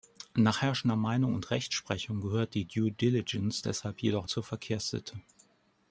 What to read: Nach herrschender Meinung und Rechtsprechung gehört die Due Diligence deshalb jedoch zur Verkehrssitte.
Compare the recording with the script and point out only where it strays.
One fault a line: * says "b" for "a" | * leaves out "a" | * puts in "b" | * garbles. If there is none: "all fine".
all fine